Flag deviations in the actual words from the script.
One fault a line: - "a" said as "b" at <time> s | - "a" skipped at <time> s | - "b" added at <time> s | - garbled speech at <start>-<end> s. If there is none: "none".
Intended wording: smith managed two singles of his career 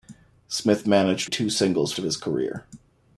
none